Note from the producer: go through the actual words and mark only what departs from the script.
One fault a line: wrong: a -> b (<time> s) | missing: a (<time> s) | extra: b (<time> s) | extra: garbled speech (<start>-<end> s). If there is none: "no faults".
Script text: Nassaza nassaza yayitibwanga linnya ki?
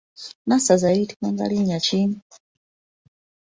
missing: nassaza (0.9 s)